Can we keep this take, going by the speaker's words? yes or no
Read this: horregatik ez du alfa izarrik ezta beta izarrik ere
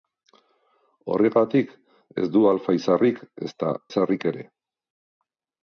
no